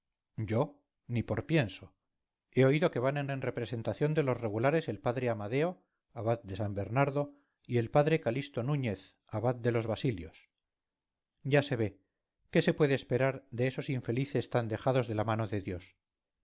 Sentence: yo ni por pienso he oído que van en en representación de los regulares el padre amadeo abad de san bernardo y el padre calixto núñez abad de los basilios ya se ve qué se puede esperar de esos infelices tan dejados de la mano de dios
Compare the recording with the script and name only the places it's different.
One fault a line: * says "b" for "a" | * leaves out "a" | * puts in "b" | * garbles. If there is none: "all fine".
all fine